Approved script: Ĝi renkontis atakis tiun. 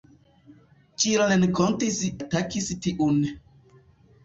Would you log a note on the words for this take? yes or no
no